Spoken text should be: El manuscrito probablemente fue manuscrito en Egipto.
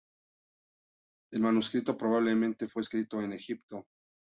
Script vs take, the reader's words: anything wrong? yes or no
yes